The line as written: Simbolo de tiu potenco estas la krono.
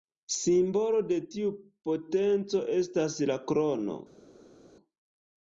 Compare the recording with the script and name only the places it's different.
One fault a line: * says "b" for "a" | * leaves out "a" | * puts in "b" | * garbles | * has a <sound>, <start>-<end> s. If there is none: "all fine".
all fine